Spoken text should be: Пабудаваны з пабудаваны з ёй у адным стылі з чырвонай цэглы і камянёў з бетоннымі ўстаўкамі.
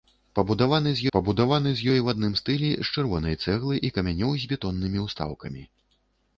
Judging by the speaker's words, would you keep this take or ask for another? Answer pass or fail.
pass